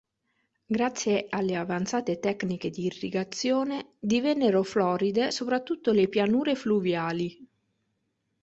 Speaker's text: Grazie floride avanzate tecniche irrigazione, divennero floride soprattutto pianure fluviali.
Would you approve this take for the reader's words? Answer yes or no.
no